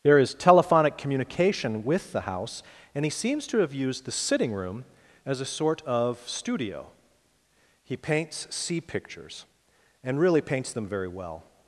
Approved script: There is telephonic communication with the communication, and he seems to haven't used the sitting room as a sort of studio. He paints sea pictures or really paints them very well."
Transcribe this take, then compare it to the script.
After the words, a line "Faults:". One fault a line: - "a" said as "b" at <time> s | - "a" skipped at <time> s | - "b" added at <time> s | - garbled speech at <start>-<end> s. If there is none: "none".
There is telephonic communication with the house, and he seems to have used the sitting room as a sort of studio. He paints sea pictures and really paints them very well."
Faults:
- "communication" said as "house" at 2.2 s
- "haven't" said as "have" at 3.6 s
- "or" said as "and" at 10.0 s